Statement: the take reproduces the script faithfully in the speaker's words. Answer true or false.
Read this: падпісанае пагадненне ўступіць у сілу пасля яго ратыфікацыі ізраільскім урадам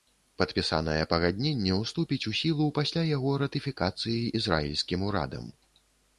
true